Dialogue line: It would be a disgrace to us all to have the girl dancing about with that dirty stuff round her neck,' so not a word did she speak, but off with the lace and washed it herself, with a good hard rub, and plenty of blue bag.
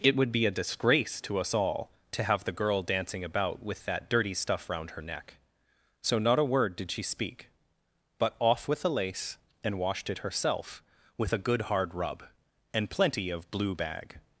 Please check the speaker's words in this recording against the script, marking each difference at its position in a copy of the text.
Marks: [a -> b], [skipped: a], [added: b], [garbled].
It would be a disgrace to us all to have the girl dancing about with that dirty stuff round her neck,' so not a word did she speak, but off with the lace and washed it herself, with a good hard rub, and plenty of blue bag.